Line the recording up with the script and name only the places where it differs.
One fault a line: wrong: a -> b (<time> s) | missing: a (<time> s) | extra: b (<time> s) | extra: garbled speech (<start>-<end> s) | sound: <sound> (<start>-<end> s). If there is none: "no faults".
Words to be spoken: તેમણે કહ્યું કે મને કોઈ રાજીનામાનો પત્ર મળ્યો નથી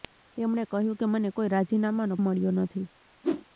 missing: પત્ર (2.1 s)
sound: whoosh (3.2-3.5 s)